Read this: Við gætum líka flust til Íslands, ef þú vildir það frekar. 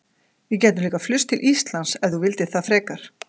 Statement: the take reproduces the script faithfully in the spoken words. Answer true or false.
true